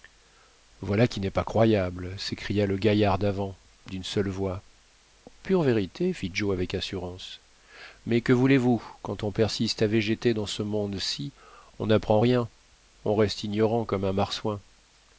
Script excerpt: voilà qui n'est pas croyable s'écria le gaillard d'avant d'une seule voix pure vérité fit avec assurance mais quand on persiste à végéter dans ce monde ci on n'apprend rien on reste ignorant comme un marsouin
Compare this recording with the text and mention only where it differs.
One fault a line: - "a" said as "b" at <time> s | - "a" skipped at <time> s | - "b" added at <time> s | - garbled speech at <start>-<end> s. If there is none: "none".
- "joe" added at 6.3 s
- "que voulez vous" added at 8.2 s